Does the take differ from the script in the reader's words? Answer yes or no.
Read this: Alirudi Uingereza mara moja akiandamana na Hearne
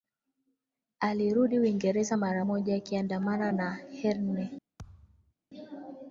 no